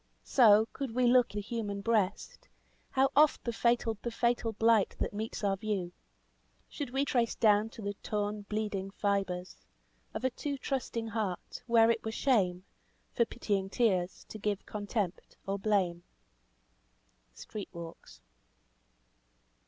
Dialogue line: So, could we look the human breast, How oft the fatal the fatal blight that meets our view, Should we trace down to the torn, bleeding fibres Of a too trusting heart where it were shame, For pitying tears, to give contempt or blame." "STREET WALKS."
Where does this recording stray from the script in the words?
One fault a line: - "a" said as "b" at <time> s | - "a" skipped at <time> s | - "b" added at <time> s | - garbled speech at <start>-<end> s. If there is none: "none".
none